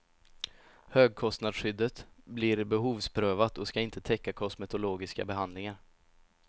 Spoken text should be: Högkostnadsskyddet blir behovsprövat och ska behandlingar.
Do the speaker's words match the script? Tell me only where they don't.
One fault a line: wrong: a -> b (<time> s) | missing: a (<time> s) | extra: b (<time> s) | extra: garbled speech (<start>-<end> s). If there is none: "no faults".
extra: inte täcka kosmetologiska (3.8 s)